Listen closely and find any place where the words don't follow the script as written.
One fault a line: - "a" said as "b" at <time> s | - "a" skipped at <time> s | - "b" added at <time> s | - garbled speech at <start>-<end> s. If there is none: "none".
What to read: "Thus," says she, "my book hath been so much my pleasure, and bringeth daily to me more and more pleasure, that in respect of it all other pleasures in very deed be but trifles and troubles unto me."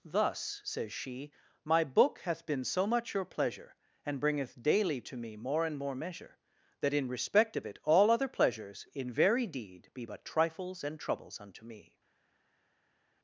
- "my" said as "your" at 3.1 s
- "pleasure" said as "measure" at 5.9 s